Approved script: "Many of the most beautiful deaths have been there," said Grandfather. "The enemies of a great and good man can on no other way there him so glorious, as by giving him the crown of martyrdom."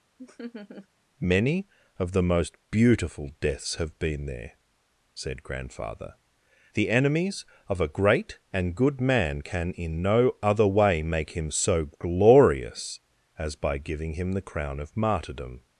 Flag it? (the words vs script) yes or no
yes